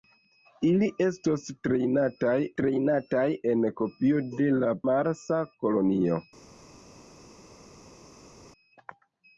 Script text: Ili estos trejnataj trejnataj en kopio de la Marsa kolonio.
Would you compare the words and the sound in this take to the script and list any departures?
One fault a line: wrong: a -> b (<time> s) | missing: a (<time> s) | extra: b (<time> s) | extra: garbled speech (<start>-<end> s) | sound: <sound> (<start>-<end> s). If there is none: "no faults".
no faults